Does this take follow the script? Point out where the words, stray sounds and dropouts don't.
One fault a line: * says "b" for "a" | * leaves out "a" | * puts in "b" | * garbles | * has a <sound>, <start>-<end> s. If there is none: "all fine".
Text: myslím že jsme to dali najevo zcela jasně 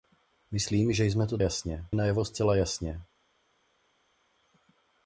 * says "jasně" for "dali"